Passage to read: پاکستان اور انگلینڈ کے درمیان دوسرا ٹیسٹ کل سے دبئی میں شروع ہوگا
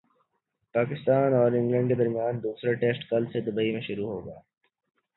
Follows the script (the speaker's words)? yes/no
yes